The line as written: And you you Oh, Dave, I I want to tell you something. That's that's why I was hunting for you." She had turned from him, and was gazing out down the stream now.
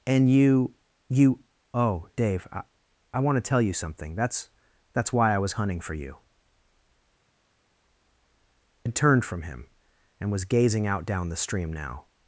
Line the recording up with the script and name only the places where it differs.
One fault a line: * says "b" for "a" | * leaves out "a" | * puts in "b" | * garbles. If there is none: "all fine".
* leaves out "She"